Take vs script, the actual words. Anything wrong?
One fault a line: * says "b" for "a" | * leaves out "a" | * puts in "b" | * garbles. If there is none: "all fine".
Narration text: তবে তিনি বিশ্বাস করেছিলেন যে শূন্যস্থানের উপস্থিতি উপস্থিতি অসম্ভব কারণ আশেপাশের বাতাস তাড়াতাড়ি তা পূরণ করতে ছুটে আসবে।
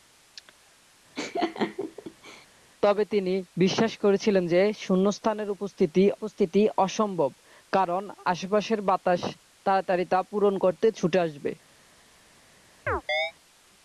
all fine